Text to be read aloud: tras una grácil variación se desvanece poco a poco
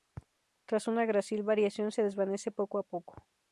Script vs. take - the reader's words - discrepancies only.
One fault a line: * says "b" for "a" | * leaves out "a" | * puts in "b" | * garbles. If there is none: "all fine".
all fine